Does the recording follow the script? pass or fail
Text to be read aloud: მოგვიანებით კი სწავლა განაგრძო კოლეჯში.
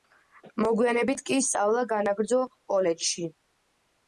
pass